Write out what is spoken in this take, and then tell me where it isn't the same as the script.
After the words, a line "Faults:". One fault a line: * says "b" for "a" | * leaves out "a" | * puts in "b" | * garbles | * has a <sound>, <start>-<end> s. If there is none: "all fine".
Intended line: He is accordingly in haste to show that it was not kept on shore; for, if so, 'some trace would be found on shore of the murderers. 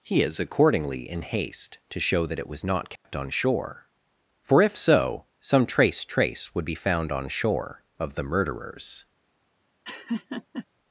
He is accordingly in haste to show that it was not kept on shore; for, if so, 'some trace trace would be found on shore of the murderers.
Faults:
* has a dropout, 3.0-3.0 s
* puts in "trace"
* has a laugh, 9.8-10.7 s